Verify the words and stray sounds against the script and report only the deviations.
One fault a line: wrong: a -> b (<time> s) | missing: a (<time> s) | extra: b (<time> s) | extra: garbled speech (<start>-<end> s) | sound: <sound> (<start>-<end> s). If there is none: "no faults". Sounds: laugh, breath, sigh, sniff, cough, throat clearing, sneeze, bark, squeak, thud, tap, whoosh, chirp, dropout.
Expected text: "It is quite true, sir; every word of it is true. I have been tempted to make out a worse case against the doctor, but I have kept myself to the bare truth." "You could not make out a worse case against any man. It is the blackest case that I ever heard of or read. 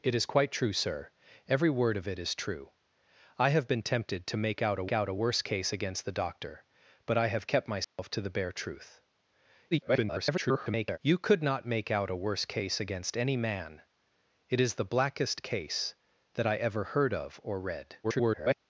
extra: out a (4.9 s)
sound: dropout (7.8-8.0 s)
extra: garbled speech (9.7-11.0 s)
extra: garbled speech (18.0-18.5 s)